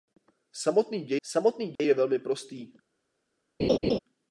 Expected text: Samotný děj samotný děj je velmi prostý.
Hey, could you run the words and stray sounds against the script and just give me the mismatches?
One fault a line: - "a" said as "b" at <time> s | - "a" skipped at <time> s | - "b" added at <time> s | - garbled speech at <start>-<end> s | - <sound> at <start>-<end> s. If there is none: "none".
- dropout at 1.8-1.8 s
- laugh at 3.6-4.0 s